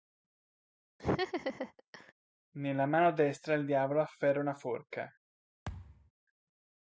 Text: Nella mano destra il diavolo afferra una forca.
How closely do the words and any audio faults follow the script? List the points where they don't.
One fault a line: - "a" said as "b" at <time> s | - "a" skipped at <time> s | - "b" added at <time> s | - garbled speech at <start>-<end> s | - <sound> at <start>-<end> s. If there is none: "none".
- laugh at 1.0-2.1 s
- thud at 5.7-6.1 s